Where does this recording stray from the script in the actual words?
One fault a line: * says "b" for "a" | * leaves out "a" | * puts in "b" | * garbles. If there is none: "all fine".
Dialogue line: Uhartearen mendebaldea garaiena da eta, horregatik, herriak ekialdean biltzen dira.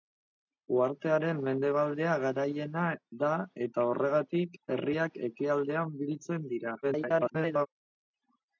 * garbles